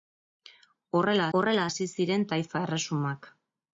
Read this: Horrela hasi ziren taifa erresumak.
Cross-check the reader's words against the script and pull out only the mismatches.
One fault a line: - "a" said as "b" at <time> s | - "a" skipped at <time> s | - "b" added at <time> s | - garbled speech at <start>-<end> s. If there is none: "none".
- "horrela" added at 1.4 s